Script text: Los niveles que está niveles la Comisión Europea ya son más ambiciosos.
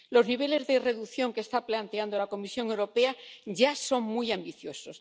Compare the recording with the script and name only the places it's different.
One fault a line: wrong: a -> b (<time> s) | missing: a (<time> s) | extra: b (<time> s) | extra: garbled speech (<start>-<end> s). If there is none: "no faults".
extra: de reducción (0.7 s)
wrong: niveles -> planteando (1.6 s)
wrong: más -> muy (4.0 s)